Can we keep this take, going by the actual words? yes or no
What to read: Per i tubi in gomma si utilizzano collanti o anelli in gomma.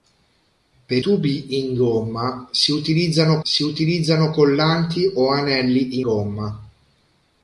no